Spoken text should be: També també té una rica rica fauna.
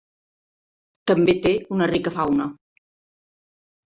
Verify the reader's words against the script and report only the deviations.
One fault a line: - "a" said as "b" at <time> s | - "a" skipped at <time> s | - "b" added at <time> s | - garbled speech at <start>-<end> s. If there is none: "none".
- "també" skipped at 1.4 s
- "rica" skipped at 2.1 s